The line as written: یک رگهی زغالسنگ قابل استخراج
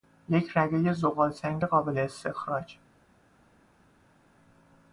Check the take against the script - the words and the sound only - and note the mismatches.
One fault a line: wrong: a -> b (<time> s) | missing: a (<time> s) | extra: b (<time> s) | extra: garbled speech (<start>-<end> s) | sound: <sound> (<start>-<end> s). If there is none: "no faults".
no faults